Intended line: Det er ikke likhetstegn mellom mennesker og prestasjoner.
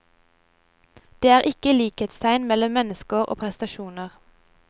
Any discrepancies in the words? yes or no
no